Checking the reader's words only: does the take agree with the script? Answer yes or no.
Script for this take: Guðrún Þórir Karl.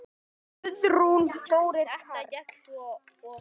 yes